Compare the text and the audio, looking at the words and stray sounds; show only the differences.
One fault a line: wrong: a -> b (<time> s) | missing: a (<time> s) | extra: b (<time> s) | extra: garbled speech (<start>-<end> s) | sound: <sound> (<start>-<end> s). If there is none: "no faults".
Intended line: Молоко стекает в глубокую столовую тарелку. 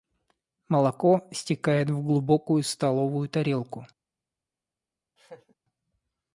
sound: laugh (5.2-5.5 s)